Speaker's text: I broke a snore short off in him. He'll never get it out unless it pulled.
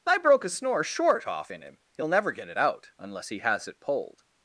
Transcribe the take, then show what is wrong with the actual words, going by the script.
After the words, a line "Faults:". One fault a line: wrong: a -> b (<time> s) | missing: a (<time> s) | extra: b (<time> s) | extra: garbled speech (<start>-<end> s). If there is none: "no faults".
I broke a snore short off in him. He'll never get it out unless he has it pulled.
Faults:
extra: he has (3.3 s)